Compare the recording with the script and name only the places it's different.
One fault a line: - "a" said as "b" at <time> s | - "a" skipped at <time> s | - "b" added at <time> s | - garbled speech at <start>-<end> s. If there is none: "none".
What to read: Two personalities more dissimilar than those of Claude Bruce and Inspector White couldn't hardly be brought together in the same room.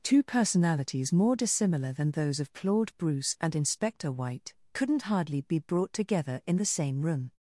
none